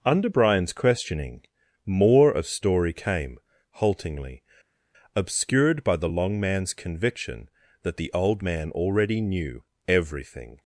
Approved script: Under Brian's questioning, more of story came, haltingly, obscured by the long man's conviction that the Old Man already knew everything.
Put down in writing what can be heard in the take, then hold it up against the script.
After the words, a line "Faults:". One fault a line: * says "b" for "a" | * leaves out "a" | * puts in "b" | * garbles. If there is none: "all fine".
Under Brian's questioning, more of story came, haltingly, obscured by the long man's conviction that the Old Man already knew everything.
Faults:
all fine